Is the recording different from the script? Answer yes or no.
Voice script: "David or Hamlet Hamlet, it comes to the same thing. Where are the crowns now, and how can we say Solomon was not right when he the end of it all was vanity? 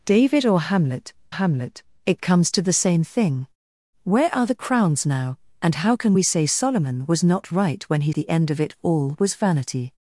no